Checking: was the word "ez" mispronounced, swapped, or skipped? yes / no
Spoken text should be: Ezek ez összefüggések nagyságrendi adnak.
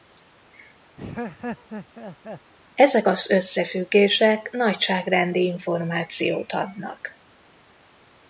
yes